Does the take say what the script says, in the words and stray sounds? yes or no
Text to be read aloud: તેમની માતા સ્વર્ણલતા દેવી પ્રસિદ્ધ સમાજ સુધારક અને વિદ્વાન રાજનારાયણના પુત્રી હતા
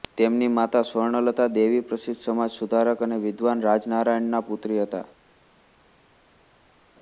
yes